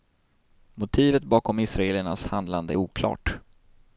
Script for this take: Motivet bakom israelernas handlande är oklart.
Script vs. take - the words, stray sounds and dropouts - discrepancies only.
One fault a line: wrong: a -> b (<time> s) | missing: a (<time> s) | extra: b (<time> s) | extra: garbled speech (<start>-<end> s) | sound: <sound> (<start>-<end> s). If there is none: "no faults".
no faults